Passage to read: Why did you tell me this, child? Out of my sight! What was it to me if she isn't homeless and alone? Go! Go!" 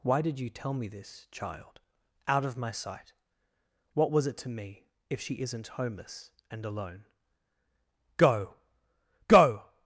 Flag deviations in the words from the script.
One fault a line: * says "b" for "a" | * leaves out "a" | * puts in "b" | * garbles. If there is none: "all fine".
all fine